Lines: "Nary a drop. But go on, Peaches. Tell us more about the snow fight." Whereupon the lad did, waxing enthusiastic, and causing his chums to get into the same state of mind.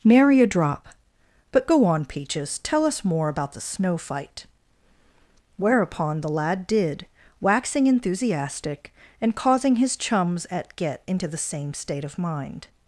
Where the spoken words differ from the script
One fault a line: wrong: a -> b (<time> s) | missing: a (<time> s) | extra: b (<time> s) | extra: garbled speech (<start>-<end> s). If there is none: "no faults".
wrong: to -> at (10.5 s)